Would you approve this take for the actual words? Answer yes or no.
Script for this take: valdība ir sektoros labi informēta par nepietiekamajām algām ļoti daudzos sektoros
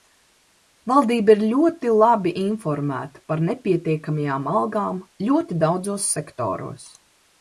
no